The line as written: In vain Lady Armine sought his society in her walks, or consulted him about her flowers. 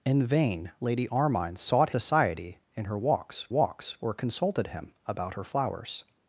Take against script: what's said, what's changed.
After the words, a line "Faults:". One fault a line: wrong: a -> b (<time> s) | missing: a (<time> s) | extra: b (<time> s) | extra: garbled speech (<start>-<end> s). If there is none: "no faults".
In vain Lady Armine sought society in her walks walks, or consulted him about her flowers.
Faults:
missing: his (1.9 s)
extra: walks (3.5 s)